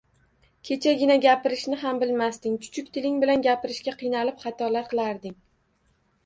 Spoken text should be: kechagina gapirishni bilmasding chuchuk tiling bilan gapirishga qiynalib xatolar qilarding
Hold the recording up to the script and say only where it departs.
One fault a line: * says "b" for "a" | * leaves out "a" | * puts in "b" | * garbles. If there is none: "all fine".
* puts in "ham"